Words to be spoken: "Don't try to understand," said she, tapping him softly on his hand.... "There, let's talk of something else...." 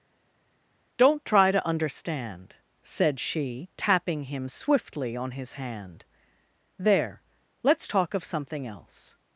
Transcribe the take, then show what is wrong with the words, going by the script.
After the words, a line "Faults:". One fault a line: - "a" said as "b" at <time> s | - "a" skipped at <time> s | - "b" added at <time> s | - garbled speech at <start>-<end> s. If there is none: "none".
"Don't try to understand," said she, tapping him swiftly on his hand.... "There, let's talk of something else...."
Faults:
- "softly" said as "swiftly" at 4.5 s